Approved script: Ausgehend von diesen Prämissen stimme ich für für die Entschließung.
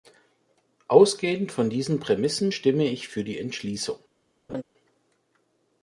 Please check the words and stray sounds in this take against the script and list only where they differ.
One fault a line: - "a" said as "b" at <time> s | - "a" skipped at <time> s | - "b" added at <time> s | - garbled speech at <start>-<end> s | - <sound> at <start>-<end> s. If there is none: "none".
- "für" skipped at 3.2 s
- laugh at 4.5-4.6 s